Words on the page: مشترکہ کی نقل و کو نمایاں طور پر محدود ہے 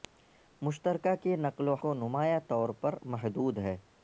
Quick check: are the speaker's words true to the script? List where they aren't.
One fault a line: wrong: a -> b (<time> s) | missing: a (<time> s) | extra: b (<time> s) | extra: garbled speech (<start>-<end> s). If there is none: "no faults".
no faults